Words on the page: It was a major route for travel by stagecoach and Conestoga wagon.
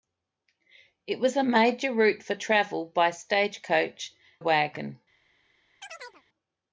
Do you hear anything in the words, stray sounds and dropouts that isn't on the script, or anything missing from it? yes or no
yes